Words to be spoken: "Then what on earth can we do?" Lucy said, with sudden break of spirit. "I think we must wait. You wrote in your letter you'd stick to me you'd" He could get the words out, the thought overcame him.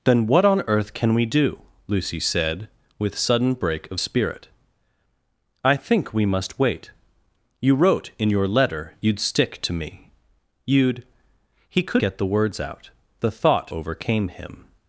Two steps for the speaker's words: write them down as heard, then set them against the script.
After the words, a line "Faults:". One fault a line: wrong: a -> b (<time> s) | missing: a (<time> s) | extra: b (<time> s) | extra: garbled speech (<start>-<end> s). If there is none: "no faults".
"Then what on earth can we do?" Lucy said, with sudden break of spirit. "I think we must wait. You wrote in your letter you'd stick to me you'd" He could get the words out, the thought overcame him.
Faults:
no faults